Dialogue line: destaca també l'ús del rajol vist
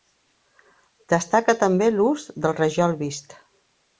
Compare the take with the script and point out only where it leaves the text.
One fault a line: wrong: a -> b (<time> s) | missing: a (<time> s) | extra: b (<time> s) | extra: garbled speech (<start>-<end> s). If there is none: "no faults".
no faults